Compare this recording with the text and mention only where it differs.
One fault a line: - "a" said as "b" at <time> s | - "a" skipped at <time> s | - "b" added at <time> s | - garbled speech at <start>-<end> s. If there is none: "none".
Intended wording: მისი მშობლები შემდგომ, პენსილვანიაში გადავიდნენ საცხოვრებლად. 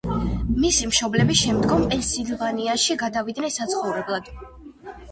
none